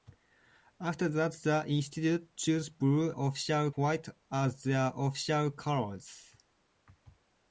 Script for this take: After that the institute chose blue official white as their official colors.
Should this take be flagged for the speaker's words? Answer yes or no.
no